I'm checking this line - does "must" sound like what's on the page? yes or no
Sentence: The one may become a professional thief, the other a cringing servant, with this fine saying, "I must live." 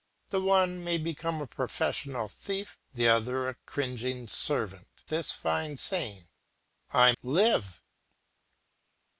no